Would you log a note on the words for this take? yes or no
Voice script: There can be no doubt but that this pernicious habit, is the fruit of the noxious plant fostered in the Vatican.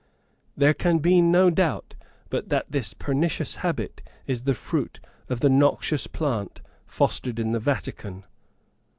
no